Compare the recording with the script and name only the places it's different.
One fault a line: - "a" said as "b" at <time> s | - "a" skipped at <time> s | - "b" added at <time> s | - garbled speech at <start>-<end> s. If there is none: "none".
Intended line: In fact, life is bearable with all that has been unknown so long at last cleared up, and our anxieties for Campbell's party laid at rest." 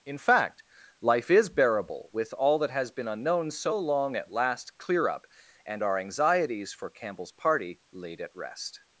- "cleared" said as "clear" at 4.8 s